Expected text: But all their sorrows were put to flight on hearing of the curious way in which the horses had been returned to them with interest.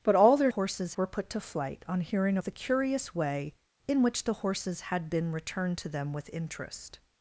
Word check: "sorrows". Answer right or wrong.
wrong